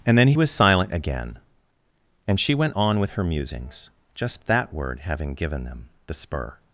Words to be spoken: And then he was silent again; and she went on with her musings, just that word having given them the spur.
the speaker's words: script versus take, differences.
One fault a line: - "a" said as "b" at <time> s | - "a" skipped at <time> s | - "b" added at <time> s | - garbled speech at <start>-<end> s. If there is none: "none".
none